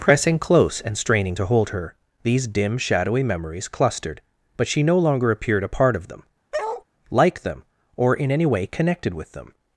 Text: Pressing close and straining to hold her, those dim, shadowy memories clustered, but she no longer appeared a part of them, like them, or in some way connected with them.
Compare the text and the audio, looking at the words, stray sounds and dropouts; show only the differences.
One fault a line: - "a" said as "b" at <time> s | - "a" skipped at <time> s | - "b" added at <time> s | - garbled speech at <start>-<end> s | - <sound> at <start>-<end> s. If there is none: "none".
- "those" said as "these" at 2.2 s
- bark at 6.5-6.8 s
- "some" said as "any" at 8.3 s